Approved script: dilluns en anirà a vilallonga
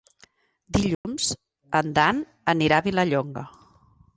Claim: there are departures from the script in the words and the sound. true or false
true